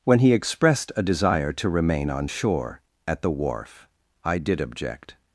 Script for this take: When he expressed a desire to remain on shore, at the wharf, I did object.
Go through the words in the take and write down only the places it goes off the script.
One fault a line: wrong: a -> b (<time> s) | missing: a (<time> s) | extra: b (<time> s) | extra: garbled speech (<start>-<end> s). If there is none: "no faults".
no faults